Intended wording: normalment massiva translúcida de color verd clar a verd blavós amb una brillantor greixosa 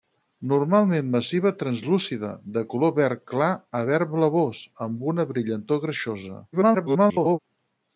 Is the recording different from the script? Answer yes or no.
yes